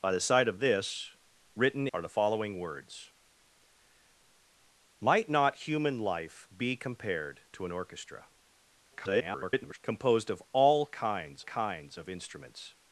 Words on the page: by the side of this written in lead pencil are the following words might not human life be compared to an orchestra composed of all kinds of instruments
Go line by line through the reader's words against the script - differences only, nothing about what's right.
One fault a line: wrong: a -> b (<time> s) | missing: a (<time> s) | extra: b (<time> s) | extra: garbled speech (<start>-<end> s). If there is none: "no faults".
missing: in lead pencil (1.9 s)
extra: garbled speech (8.9-9.8 s)
extra: kinds (11.4 s)